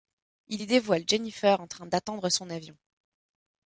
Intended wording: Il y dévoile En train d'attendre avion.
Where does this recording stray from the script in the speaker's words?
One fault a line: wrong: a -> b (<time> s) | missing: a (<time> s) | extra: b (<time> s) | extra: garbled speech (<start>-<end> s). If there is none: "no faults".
extra: Jennifer (1.0 s)
extra: son (2.3 s)